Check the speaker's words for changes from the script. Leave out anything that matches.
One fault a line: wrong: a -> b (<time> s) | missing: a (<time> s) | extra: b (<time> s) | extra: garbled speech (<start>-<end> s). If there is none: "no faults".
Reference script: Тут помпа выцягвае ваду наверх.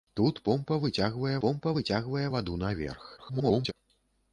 extra: помпа выцягвае (1.4 s)
extra: garbled speech (3.2-3.7 s)